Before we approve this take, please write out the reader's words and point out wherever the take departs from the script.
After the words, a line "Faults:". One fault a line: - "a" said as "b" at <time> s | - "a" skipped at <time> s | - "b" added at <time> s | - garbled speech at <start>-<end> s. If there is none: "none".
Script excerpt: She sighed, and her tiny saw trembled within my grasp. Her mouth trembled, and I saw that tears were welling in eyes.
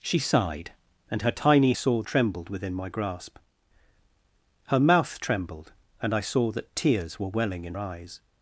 She sighed, and her tiny saw trembled within my grasp. Her mouth trembled, and I saw that tears were welling in eyes.
Faults:
none